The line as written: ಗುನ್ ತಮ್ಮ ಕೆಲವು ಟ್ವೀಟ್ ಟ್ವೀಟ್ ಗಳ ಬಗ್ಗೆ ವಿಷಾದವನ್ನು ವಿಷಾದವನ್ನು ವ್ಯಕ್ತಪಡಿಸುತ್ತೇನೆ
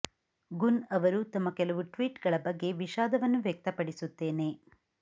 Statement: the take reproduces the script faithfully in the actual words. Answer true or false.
false